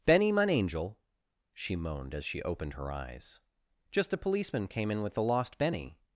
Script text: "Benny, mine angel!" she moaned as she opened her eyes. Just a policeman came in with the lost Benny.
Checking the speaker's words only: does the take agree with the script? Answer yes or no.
yes